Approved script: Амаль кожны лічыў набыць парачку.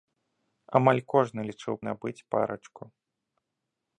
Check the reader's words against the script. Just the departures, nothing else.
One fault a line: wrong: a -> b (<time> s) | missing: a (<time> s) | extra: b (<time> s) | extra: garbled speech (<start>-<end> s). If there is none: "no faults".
no faults